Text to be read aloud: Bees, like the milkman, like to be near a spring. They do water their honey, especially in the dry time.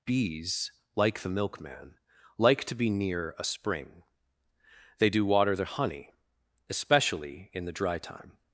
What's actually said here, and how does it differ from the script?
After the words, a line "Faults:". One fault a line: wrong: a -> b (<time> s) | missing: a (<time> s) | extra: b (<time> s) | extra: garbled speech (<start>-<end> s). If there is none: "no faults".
Bees, like the milkman, like to be near a spring. They do water their honey, especially in the dry time.
Faults:
no faults